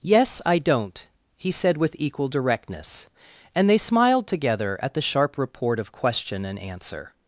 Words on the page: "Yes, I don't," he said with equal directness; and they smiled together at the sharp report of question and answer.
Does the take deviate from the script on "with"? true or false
false